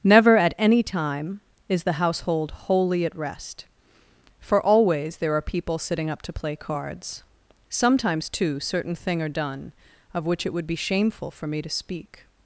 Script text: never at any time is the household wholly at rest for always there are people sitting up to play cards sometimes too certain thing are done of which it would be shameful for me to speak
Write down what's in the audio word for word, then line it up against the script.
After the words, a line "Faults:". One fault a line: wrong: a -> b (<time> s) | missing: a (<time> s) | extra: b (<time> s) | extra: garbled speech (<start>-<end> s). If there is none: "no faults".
never at any time is the household wholly at rest for always there are people sitting up to play cards sometimes too certain thing are done of which it would be shameful for me to speak
Faults:
no faults